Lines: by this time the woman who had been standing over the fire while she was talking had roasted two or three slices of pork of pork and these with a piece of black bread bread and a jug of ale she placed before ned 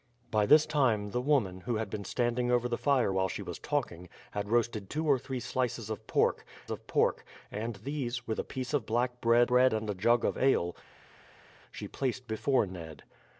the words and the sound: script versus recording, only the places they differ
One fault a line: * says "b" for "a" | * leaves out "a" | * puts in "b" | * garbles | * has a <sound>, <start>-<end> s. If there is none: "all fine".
all fine